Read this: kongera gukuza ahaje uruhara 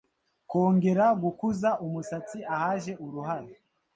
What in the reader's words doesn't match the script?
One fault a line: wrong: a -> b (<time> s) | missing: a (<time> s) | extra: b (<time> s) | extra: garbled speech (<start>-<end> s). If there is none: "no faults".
extra: umusatsi (1.9 s)